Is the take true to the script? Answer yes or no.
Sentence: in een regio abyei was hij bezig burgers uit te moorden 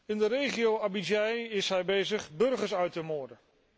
no